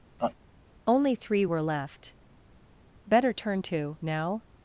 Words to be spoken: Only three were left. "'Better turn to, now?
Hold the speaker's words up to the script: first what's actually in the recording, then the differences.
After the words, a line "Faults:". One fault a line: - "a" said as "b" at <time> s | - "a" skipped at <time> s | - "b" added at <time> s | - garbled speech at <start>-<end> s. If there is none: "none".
Only three were left. "'Better turn to, now?
Faults:
none